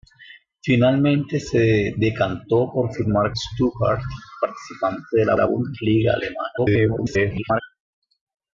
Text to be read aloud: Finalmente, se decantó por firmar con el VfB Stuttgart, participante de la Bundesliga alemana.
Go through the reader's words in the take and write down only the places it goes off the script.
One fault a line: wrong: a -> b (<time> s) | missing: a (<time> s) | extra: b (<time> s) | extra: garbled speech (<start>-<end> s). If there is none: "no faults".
missing: con el VfB (3.4 s)
extra: la (5.4 s)
extra: garbled speech (6.6-7.6 s)